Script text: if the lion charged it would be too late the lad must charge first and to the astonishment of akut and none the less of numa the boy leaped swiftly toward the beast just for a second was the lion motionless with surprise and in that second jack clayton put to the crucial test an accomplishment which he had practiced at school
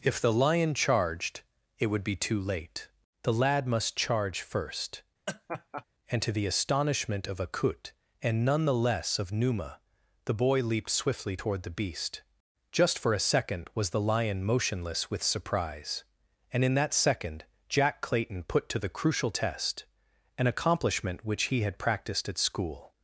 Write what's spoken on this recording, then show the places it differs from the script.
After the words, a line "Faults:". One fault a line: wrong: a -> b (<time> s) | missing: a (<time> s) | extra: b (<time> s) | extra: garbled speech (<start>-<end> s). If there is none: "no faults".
if the lion charged it would be too late the lad must charge first and to the astonishment of akut and none the less of numa the boy leaped swiftly toward the beast just for a second was the lion motionless with surprise and in that second jack clayton put to the crucial test an accomplishment which he had practiced at school
Faults:
no faults